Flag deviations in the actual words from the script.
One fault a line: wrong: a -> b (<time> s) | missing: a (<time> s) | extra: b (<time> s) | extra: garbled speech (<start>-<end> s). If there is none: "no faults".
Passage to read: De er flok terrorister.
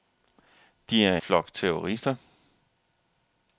no faults